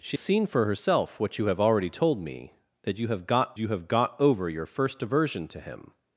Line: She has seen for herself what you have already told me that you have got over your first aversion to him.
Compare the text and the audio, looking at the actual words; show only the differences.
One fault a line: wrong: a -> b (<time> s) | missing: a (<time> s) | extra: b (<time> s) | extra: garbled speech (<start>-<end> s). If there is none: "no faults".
missing: has (0.2 s)
extra: you have got (3.6 s)